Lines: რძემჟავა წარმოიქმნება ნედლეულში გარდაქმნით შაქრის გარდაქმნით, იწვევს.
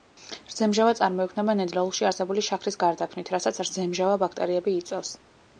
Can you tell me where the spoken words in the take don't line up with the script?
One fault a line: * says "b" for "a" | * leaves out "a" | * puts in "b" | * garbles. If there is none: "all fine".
* says "არსებული" for "გარდაქმნით"
* puts in "რასაც რძემჟავა ბაქტერიები"